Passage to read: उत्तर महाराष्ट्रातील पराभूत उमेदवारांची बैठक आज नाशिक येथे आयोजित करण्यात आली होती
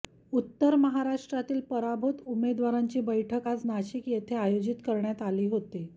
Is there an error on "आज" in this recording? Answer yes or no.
no